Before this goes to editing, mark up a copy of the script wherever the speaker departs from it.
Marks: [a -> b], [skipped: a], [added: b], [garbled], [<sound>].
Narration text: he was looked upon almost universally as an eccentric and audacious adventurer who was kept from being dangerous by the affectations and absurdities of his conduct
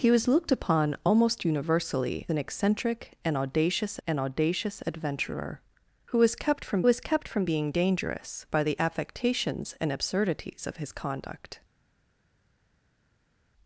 he was looked upon almost universally [skipped: as] an eccentric and audacious [added: and audacious] adventurer who was kept from [added: was kept from] being dangerous by the affectations and absurdities of his conduct